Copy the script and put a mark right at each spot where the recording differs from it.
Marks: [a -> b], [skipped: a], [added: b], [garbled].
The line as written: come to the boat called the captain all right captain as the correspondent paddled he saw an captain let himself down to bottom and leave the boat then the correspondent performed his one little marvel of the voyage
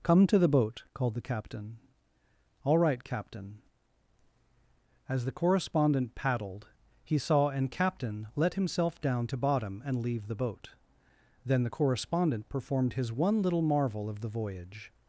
come to the boat called the captain all right captain as the correspondent paddled he saw an captain let himself down to bottom and leave the boat then the correspondent performed his one little marvel of the voyage